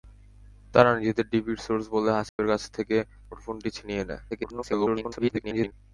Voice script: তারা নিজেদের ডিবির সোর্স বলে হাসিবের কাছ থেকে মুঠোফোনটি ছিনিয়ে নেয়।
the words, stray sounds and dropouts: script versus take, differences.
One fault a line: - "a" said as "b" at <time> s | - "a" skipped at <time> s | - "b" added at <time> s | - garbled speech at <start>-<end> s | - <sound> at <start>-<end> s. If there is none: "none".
- dropout at 2.3-2.4 s
- garbled speech at 4.3-5.7 s